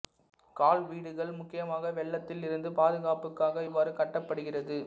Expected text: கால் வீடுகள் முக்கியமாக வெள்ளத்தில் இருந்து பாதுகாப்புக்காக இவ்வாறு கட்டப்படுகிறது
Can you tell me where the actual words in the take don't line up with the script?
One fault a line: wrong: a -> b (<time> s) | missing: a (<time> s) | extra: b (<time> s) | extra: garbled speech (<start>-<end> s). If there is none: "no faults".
no faults